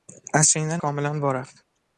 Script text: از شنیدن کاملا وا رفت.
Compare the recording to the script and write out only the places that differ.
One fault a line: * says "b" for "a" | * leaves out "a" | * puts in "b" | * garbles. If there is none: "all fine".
all fine